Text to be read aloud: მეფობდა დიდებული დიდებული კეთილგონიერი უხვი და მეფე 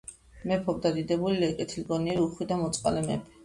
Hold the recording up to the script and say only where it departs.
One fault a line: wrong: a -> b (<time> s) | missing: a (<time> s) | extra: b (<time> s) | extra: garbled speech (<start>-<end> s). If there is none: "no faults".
missing: დიდებული (1.5 s)
extra: მოწყალე (2.7 s)